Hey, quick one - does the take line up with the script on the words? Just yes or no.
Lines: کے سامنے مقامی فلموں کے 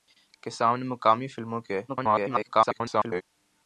no